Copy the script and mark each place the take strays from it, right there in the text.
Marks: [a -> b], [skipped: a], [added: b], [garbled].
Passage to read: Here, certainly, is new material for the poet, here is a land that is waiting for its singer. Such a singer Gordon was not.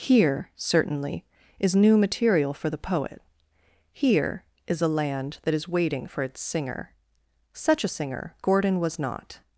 Here, certainly, is new material for the poet, here is a land that is waiting for its singer. Such a singer Gordon was not.